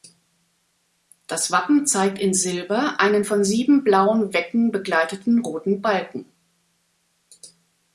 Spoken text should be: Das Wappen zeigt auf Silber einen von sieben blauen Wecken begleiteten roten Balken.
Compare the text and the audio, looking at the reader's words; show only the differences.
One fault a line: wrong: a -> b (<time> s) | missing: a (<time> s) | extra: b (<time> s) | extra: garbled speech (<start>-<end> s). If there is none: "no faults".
wrong: auf -> in (2.2 s)